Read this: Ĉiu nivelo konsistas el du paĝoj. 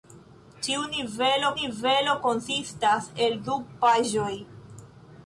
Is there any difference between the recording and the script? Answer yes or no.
yes